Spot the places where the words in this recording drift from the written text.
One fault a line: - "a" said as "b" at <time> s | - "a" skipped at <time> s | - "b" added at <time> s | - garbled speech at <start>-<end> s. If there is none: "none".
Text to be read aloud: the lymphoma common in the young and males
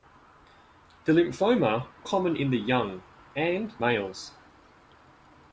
none